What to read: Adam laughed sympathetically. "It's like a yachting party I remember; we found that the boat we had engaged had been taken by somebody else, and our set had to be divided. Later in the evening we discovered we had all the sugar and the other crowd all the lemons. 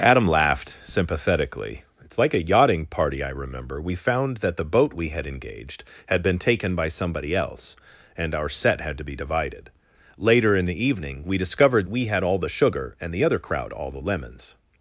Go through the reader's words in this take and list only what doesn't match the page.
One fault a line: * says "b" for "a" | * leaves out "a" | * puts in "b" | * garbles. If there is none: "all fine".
all fine